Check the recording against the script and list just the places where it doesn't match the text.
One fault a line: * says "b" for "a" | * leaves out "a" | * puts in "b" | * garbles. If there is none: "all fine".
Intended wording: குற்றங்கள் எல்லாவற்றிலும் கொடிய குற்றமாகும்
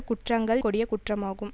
* leaves out "எல்லாவற்றிலும்"